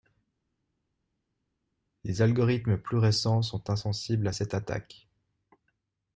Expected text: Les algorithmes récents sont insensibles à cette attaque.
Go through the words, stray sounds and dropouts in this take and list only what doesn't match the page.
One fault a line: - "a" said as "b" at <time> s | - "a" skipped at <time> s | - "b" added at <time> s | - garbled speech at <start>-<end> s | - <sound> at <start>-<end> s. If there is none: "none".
- "plus" added at 2.8 s